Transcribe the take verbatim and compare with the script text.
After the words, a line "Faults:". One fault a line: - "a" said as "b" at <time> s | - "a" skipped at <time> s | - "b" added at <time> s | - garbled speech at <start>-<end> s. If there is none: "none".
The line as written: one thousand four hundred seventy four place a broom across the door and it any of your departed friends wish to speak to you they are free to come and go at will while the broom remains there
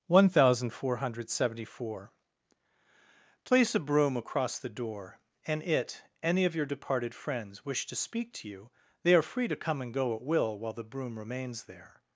one thousand four hundred seventy four place a broom across the door and it any of your departed friends wish to speak to you they are free to come and go at will while the broom remains there
Faults:
none